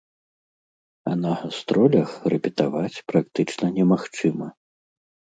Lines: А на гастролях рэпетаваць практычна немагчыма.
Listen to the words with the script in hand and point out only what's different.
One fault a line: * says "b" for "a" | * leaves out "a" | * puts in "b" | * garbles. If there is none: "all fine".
all fine